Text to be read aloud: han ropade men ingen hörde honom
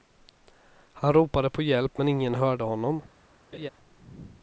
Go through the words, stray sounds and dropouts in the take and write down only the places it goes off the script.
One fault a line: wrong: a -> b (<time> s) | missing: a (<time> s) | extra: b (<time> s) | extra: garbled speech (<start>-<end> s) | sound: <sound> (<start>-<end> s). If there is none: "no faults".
extra: på hjälp (1.5 s)
sound: laugh (3.5-3.7 s)